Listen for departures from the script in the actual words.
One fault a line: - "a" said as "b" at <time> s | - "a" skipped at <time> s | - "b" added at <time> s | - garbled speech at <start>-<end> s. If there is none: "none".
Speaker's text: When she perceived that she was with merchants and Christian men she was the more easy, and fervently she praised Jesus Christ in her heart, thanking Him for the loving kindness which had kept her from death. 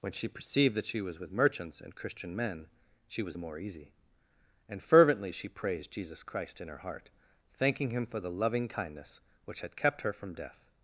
none